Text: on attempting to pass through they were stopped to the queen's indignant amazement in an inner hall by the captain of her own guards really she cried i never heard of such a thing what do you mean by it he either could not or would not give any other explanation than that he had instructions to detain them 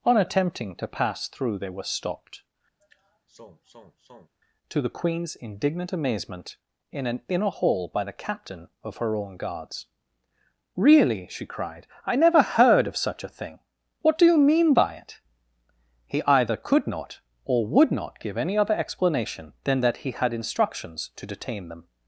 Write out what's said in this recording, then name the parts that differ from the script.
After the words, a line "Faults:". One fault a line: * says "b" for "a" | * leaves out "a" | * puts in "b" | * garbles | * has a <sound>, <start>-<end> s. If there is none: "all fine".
on attempting to pass through they were stopped to the queen's indignant amazement in an inner hall by the captain of her own guards really she cried i never heard of such a thing what do you mean by it he either could not or would not give any other explanation than that he had instructions to detain them
Faults:
* has a sigh, 2.8-4.3 s